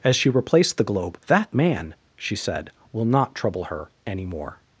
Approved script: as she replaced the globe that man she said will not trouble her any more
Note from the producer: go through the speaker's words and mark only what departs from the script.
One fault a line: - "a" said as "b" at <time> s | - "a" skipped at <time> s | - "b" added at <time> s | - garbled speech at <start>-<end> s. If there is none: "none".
none